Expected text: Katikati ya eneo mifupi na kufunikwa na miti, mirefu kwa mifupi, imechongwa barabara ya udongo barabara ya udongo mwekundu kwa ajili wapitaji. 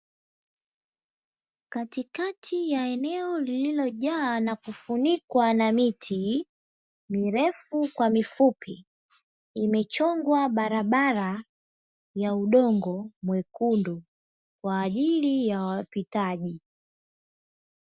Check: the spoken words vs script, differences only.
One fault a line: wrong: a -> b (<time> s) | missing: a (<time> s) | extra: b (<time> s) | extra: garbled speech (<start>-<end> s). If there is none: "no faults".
wrong: mifupi -> lililojaa (3.4 s)
missing: barabara ya udongo (13.1 s)
extra: ya (15.5 s)